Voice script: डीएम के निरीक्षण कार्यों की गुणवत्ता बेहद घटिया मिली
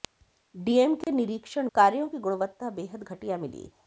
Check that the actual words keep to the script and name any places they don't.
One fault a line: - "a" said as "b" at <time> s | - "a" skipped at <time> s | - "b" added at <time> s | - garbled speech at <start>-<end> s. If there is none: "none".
none